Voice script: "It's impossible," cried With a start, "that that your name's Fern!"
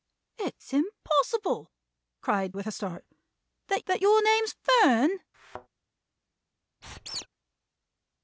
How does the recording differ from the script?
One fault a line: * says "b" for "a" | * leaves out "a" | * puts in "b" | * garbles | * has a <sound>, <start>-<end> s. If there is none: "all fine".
* has a thud, 5.3-5.7 s
* has a squeak, 6.8-7.3 s